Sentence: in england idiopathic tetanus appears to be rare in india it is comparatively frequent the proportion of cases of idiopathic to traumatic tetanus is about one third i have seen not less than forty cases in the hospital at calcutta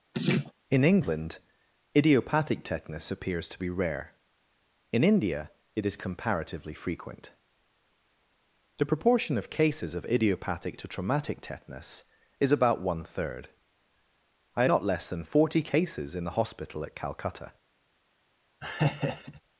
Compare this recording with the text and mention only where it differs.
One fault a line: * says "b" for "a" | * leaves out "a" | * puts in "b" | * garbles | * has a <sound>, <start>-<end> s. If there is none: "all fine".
* has a laugh, 0.1-0.5 s
* leaves out "have seen"
* has a laugh, 18.6-19.4 s